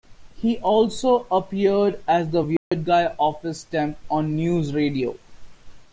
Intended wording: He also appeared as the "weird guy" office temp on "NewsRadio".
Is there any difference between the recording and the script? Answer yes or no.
no